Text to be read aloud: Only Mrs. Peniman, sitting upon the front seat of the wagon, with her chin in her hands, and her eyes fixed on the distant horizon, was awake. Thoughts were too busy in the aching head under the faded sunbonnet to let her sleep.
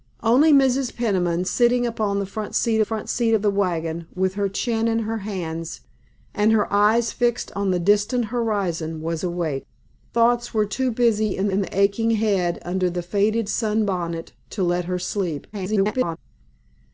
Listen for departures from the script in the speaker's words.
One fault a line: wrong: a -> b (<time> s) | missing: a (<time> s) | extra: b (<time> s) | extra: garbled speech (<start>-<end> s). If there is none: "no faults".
extra: front seat (2.8 s)
extra: in (11.5 s)
extra: garbled speech (15.5-16.2 s)